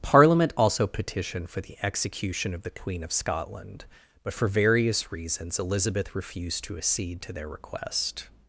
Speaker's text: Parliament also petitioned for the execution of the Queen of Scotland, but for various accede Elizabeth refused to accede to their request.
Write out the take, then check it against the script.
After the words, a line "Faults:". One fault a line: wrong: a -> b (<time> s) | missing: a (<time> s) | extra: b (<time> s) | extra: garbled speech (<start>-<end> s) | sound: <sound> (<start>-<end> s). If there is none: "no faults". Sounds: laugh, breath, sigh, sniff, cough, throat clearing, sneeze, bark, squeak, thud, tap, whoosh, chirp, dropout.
Parliament also petitioned for the execution of the Queen of Scotland, but for various reasons Elizabeth refused to accede to their request.
Faults:
wrong: accede -> reasons (5.1 s)